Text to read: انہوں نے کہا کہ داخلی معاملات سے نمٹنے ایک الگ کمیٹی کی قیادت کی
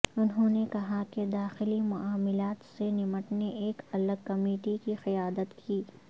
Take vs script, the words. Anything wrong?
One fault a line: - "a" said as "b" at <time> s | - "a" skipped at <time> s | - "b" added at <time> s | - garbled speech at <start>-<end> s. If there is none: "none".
none